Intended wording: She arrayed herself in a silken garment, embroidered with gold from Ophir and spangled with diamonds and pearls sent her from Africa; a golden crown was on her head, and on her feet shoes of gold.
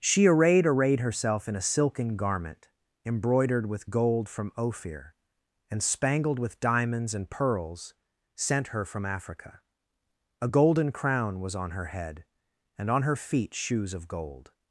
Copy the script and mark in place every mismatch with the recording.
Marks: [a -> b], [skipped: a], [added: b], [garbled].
She arrayed [added: arrayed] herself in a silken garment, embroidered with gold from Ophir and spangled with diamonds and pearls sent her from Africa; a golden crown was on her head, and on her feet shoes of gold.